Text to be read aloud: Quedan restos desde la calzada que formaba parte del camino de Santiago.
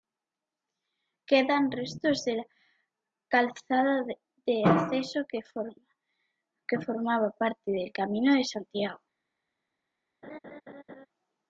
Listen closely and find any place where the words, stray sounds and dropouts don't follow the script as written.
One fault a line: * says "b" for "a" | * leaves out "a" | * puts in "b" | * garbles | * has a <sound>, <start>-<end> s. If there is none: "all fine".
* says "de" for "desde"
* puts in "de acceso"
* has a laugh, 10.2-11.1 s